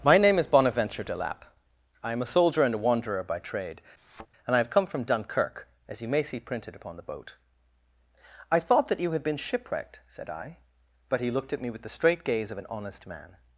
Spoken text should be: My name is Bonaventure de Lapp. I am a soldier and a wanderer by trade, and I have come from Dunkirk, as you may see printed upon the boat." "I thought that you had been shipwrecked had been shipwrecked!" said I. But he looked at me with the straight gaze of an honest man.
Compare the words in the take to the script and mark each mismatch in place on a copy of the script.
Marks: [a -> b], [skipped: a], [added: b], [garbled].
My name is Bonaventure de Lapp. I am a soldier and a wanderer by trade, and I have come from Dunkirk, as you may see printed upon the boat." "I thought that you had been shipwrecked [skipped: had been shipwrecked!"] said I. But he looked at me with the straight gaze of an honest man.